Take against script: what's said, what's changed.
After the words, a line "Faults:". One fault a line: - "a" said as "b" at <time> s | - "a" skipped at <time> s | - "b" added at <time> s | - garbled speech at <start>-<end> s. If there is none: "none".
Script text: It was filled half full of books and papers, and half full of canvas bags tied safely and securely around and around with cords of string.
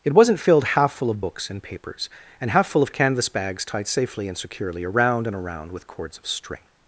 It wasn't filled half full of books and papers, and half full of canvas bags tied safely and securely around and around with cords of string.
Faults:
- "was" said as "wasn't" at 0.1 s